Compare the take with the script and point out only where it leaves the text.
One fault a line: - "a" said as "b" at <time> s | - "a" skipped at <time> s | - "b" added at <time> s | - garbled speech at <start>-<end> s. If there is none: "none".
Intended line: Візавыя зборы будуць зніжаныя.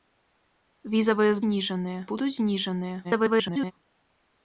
- "зборы" said as "зніжаныя" at 1.4 s
- garbled speech at 3.0-3.7 s